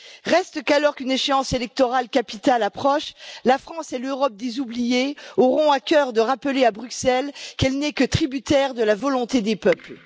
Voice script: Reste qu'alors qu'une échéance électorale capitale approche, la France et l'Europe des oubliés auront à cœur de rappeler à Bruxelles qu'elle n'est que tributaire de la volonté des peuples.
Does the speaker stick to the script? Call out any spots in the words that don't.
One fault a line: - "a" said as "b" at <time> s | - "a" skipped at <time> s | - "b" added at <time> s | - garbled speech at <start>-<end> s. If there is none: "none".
none